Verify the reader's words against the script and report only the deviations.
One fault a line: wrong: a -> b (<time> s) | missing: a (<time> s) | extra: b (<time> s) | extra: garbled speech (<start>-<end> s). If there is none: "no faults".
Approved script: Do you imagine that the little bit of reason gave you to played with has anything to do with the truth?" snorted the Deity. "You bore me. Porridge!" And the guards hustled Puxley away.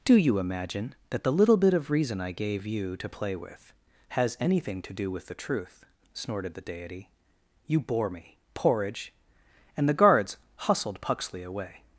extra: I (2.2 s)
wrong: played -> play (3.1 s)